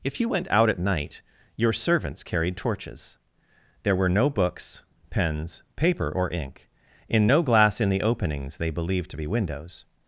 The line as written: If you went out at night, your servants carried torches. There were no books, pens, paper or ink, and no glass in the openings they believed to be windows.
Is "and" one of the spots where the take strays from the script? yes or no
yes